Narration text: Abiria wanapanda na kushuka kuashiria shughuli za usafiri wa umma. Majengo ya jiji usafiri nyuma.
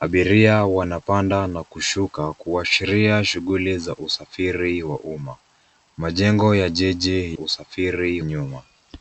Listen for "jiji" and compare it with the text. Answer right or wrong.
right